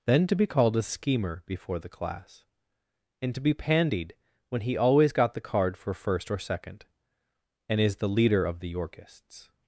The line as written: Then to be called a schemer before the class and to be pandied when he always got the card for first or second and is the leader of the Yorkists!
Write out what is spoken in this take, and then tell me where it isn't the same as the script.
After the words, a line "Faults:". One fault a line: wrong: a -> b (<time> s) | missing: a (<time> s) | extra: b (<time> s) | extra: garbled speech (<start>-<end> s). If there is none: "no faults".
Then to be called a schemer before the class and to be pandied when he always got the card for first or second and is the leader of the Yorkists!
Faults:
no faults